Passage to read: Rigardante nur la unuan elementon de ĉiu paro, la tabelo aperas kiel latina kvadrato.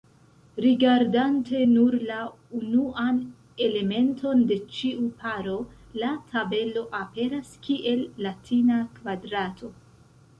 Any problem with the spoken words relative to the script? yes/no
no